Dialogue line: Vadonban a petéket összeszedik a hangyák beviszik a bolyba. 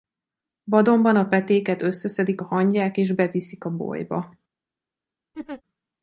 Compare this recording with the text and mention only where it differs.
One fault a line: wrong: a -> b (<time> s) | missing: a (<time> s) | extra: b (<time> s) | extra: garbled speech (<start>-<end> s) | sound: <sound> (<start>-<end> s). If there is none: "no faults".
extra: és (3.0 s)
sound: laugh (5.3-5.6 s)